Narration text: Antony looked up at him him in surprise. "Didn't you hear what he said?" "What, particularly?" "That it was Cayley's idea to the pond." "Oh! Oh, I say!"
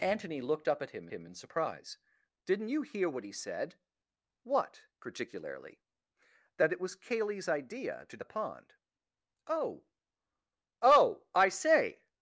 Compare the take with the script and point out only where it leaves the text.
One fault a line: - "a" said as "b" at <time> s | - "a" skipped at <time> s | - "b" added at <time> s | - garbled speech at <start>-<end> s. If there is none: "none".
none